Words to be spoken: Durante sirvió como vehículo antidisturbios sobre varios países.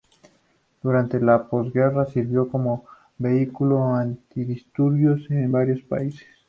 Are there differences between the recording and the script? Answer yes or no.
yes